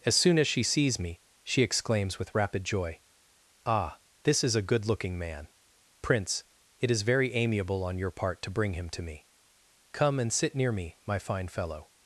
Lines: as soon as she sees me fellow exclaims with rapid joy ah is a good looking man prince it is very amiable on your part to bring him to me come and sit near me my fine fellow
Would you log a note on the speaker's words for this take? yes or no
yes